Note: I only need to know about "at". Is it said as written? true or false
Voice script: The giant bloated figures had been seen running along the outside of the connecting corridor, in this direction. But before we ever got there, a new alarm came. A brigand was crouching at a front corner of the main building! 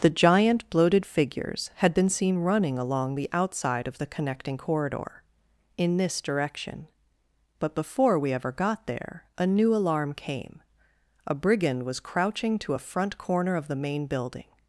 false